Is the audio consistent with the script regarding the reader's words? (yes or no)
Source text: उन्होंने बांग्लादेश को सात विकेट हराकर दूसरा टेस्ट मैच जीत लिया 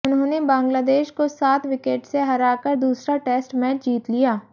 no